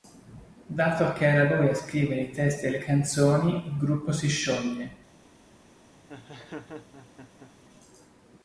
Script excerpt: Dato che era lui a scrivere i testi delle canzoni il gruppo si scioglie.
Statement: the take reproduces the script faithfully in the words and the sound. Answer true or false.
false